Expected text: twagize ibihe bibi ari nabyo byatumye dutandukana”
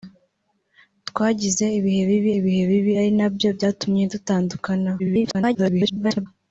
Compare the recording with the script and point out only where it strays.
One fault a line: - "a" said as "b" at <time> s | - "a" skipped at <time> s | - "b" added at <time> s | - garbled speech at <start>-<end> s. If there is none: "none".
- "ibihe bibi" added at 2.4 s
- garbled speech at 5.0-6.3 s